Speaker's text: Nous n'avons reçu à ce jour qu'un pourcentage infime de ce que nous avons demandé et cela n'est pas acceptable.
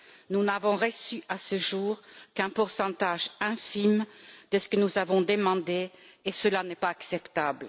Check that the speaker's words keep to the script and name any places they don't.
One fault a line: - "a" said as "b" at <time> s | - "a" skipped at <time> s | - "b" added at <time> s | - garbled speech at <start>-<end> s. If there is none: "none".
none